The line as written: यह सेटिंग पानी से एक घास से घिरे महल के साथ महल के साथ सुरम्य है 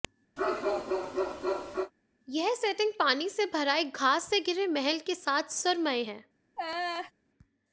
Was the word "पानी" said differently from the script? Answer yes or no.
no